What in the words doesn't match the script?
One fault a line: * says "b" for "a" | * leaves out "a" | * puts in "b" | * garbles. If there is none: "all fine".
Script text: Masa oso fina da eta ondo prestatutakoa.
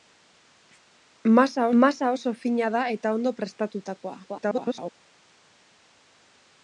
* puts in "masa"
* garbles